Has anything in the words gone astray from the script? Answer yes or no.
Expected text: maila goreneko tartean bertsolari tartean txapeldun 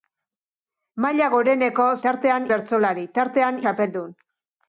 no